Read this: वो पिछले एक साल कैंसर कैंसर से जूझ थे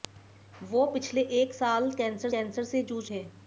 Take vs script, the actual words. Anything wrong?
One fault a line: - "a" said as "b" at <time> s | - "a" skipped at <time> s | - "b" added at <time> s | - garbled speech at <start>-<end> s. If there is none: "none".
none